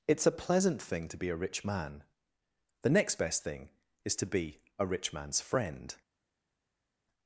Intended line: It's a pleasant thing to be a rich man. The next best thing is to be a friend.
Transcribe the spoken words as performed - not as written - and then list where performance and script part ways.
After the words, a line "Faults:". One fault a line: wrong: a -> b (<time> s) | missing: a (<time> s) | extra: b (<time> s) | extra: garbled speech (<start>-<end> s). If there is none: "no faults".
It's a pleasant thing to be a rich man. The next best thing is to be a rich man's friend.
Faults:
extra: rich man's (4.8 s)